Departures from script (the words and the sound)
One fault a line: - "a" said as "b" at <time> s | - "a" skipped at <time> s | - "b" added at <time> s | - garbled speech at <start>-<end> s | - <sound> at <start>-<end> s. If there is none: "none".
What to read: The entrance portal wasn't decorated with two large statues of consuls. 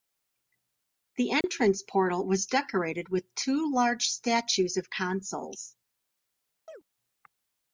- dropout at 1.4-1.4 s
- "wasn't" said as "was" at 2.2 s
- chirp at 6.7-6.8 s